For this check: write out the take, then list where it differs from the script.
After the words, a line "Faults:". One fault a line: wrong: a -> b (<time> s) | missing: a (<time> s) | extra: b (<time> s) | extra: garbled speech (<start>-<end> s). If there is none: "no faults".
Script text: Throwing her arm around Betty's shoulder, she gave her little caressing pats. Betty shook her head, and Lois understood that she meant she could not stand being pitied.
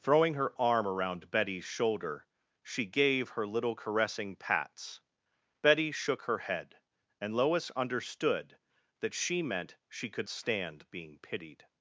Throwing her arm around Betty's shoulder, she gave her little caressing pats. Betty shook her head, and Lois understood that she meant she could stand being pitied.
Faults:
missing: not (10.3 s)